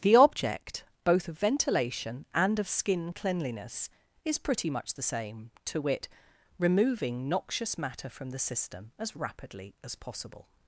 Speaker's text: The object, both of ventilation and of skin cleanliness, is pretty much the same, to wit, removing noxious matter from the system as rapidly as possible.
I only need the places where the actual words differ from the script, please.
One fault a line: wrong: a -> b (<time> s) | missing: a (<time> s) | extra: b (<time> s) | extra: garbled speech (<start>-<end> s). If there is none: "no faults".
no faults